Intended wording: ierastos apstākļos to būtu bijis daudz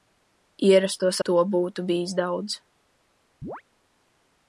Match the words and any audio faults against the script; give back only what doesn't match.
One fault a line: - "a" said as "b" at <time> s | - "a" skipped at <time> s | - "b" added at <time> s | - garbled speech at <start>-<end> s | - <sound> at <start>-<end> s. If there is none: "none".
- "apstākļos" skipped at 1.2 s
- chirp at 3.4-3.6 s